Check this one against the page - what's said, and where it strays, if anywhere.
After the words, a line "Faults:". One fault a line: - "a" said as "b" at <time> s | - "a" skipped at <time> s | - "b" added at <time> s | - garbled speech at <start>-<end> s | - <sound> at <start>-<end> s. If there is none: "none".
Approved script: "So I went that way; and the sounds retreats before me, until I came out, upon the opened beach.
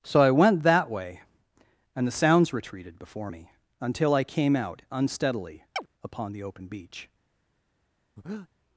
"So I went that way; and the sounds retreated before me, until I came out, unsteadily, upon the open beach.
Faults:
- "retreats" said as "retreated" at 2.5 s
- "unsteadily" added at 4.9 s
- chirp at 5.8-5.9 s
- "opened" said as "open" at 6.4 s
- breath at 8.2-8.5 s